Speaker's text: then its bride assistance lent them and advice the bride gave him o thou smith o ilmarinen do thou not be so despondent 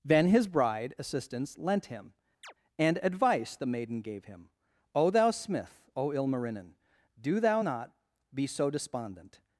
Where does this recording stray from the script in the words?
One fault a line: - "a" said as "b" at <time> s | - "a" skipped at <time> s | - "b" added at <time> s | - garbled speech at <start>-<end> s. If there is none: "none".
- "its" said as "his" at 0.3 s
- "them" said as "him" at 1.9 s
- "bride" said as "maiden" at 3.7 s